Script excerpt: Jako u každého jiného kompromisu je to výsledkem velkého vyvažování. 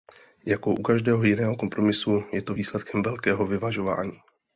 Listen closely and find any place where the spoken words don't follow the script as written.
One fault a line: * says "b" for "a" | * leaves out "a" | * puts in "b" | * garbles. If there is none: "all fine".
all fine